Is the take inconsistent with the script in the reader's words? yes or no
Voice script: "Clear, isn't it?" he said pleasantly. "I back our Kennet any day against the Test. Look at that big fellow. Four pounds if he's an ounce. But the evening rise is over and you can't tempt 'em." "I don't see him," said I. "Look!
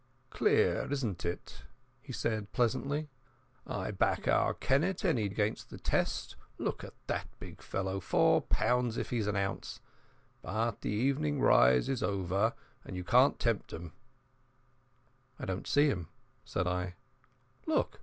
yes